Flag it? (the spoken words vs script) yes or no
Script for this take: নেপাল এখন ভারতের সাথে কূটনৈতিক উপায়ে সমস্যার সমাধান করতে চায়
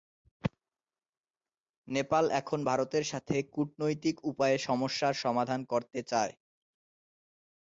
no